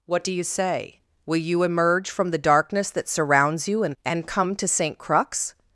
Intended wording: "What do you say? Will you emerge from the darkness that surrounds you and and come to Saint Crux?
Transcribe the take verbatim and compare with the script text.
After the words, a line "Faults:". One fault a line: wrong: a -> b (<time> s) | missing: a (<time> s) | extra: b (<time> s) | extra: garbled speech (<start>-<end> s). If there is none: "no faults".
"What do you say? Will you emerge from the darkness that surrounds you and and come to Saint Crux?
Faults:
no faults